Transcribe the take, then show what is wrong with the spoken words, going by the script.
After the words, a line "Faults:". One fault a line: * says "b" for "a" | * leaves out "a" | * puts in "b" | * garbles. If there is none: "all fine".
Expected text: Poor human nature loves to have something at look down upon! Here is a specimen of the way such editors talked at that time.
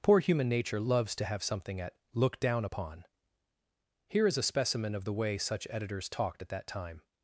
Poor human nature loves to have something at look down upon! Here is a specimen of the way such editors talked at that time.
Faults:
all fine